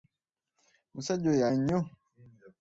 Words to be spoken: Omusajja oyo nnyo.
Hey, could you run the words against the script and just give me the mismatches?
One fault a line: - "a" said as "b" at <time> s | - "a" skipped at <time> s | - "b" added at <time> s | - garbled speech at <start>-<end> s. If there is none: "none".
none